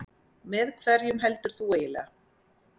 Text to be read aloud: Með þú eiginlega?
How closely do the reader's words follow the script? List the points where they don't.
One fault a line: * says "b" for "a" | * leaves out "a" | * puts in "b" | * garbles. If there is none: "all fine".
* puts in "hverjum heldur"